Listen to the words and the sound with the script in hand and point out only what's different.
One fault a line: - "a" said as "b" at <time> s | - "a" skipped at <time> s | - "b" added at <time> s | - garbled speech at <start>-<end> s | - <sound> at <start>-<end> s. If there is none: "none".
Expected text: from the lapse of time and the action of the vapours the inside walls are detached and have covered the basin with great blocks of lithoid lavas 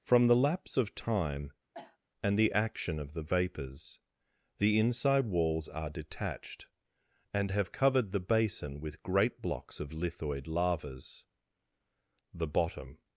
- cough at 1.7-2.0 s
- "the bottom" added at 12.3 s